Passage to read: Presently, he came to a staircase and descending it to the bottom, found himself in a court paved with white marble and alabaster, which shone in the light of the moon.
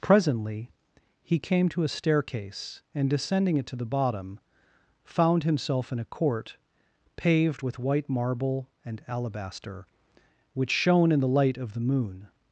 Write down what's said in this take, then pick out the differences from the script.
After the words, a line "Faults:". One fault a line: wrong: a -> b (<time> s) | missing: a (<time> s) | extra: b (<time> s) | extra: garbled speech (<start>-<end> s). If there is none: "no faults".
Presently, he came to a staircase and descending it to the bottom, found himself in a court paved with white marble and alabaster, which shone in the light of the moon.
Faults:
no faults